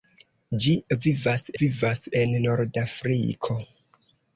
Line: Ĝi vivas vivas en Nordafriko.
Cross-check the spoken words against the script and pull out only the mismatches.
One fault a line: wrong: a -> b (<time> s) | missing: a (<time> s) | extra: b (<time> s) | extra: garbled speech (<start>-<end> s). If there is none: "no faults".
no faults